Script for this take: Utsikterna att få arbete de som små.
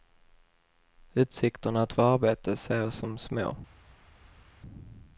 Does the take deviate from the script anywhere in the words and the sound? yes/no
yes